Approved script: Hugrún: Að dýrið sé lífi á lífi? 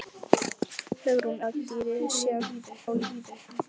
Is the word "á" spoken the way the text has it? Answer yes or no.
yes